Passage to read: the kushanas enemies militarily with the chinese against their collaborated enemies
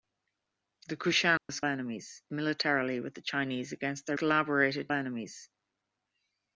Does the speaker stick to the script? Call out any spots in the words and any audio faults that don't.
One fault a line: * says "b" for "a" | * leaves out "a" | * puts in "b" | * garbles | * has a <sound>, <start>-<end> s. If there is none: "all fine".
* has a dropout, 1.4-1.5 s